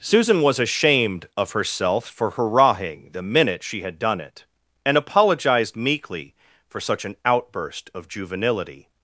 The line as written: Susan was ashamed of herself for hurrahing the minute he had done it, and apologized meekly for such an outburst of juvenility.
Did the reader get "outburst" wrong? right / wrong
right